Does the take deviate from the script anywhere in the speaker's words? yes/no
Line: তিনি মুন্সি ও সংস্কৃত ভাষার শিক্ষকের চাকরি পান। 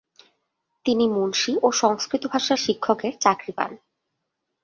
no